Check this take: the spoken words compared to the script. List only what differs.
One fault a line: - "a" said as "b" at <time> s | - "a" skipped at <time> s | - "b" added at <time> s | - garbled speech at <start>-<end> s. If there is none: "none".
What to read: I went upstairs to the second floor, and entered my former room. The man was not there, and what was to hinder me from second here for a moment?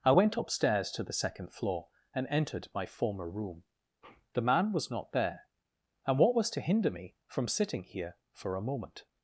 - "second" said as "sitting" at 7.5 s